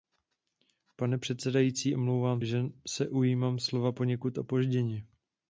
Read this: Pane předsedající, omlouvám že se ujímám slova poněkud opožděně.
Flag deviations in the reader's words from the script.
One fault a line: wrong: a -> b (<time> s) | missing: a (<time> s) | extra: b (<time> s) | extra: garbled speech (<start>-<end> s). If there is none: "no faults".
no faults